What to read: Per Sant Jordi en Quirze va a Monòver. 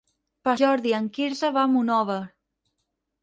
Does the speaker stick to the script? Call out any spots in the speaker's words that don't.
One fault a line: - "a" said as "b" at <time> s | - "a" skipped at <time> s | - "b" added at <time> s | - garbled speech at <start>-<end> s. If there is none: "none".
- "Sant" skipped at 0.5 s